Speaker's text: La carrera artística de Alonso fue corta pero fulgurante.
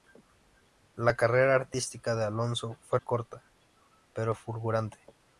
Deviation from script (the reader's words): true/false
false